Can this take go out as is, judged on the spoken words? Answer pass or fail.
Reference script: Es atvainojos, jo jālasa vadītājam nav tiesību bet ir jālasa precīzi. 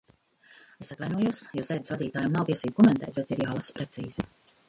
fail